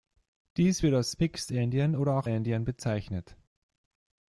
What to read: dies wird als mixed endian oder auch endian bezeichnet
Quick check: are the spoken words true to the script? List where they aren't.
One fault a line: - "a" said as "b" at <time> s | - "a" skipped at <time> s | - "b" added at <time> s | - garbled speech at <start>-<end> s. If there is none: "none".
none